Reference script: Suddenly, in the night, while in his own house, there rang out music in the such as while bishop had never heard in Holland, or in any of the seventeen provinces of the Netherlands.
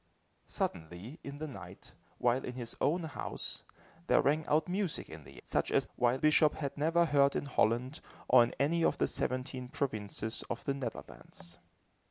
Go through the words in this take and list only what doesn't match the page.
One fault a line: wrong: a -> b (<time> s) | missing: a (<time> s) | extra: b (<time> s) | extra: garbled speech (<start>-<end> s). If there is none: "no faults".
no faults